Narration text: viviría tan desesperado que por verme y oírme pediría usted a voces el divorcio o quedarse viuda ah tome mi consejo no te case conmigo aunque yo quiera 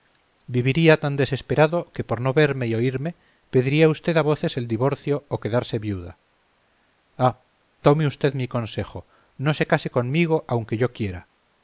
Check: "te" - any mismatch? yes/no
yes